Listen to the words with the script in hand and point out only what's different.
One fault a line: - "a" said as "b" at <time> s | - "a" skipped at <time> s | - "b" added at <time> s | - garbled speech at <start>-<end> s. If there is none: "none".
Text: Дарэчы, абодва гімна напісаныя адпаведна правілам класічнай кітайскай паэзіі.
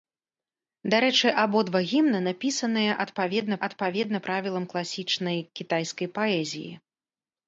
- "адпаведна" added at 3.7 s